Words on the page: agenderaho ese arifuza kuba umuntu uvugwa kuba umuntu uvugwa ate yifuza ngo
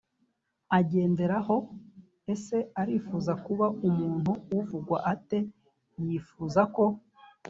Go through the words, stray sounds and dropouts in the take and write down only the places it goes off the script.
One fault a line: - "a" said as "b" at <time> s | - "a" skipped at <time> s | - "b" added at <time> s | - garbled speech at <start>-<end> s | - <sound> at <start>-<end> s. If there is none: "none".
- "kuba umuntu uvugwa" skipped at 5.0 s
- "ngo" said as "ko" at 6.7 s